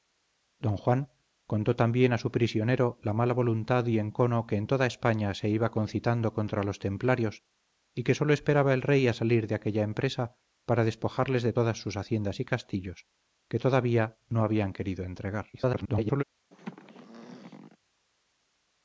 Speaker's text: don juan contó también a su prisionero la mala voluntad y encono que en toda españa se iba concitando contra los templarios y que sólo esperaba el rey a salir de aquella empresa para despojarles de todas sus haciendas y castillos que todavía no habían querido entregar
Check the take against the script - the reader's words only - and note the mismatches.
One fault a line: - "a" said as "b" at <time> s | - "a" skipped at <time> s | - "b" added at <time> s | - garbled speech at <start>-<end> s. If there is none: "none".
- garbled speech at 15.5-16.2 s